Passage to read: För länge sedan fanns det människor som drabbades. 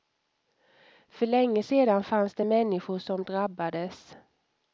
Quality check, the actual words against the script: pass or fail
pass